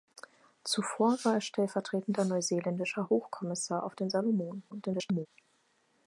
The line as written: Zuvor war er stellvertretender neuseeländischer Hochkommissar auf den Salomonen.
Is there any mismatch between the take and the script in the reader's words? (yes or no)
yes